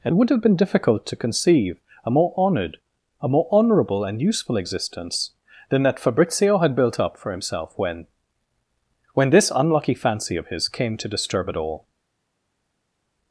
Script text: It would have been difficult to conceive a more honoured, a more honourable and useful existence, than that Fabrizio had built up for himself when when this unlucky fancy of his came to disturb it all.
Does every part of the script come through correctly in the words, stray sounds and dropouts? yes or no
yes